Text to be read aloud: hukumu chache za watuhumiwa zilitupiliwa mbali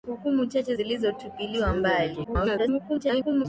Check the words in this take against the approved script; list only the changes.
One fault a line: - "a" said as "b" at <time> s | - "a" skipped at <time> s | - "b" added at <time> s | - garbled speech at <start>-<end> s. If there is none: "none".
- "za watuhumiwa" skipped at 0.8 s
- garbled speech at 2.2-3.5 s